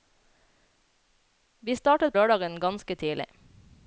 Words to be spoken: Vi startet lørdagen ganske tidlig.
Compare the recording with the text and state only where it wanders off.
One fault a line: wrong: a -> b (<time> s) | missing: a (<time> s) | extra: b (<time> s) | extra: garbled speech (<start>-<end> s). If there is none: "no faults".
no faults